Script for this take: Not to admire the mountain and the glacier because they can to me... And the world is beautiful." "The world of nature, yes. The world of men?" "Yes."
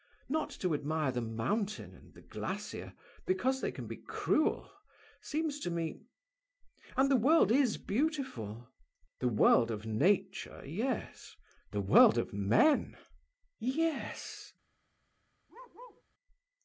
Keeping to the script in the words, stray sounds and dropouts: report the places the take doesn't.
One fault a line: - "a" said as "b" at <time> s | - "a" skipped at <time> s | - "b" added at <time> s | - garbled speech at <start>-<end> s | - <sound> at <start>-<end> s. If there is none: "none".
- "be cruel seems" added at 3.9 s
- bark at 15.5-16.0 s